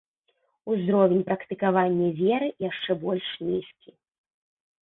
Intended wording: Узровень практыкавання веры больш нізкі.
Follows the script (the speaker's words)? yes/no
no